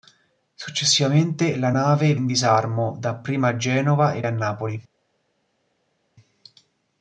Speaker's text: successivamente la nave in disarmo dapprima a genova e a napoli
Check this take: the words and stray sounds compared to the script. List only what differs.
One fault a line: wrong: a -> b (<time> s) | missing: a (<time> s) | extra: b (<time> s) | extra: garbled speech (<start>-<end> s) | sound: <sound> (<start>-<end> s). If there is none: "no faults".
no faults